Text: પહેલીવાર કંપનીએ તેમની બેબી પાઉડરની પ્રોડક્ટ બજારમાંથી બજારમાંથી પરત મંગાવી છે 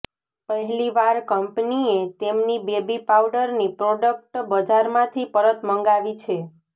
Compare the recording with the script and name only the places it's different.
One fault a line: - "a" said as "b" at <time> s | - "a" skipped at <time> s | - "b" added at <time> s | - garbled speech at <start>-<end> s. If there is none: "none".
- "બજારમાંથી" skipped at 5.3 s